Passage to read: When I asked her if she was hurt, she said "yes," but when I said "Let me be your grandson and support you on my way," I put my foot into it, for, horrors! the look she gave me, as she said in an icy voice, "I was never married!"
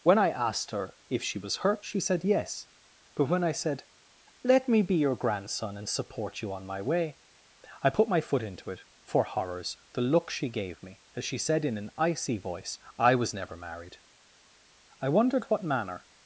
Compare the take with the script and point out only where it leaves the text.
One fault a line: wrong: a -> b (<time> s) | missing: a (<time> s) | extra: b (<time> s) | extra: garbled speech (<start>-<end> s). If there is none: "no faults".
extra: I wondered what manner (15.0 s)